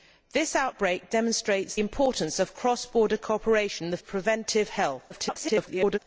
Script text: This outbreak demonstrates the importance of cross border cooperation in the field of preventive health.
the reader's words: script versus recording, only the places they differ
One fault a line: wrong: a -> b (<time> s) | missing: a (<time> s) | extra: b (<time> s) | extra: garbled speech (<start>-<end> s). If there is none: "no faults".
missing: the (1.8 s)
missing: field (4.0 s)
extra: garbled speech (5.1-6.0 s)